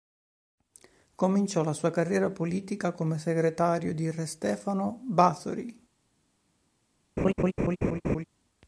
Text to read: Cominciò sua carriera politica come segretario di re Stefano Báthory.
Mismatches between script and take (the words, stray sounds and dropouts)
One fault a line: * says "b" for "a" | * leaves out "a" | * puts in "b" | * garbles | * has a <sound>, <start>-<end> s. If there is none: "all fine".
* puts in "la"
* has a laugh, 7.2-8.2 s